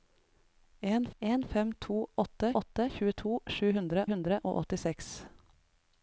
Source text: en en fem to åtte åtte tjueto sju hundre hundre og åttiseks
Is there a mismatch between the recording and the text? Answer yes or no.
no